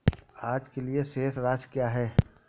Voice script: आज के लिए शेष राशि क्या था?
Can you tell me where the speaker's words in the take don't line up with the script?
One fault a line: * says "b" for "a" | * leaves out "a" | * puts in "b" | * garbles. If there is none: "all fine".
* says "है" for "था"